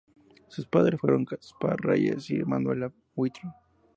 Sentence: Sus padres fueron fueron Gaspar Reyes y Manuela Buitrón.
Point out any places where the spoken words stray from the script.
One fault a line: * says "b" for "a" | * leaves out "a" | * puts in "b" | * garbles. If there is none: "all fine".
* leaves out "fueron"